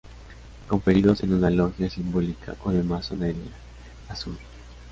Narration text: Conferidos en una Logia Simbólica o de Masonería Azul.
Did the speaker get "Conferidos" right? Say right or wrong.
right